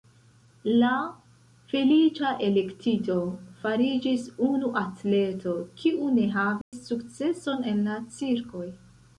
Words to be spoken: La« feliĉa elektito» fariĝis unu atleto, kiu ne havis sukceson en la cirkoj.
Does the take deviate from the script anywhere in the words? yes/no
no